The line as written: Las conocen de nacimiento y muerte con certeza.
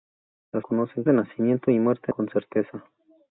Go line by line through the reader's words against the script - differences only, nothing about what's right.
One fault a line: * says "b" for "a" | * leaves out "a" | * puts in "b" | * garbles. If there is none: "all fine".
all fine